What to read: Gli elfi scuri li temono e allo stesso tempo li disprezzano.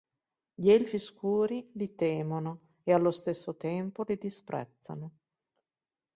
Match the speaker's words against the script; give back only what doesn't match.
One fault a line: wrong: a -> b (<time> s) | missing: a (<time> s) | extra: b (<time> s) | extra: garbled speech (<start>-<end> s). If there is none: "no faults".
no faults